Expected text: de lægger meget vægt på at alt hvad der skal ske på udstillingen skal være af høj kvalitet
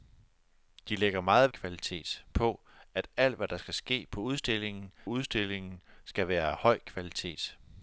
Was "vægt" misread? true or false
true